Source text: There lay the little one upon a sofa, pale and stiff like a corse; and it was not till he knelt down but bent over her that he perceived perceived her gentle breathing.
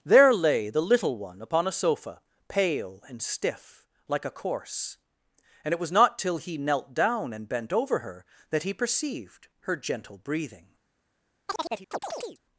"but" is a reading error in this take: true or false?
true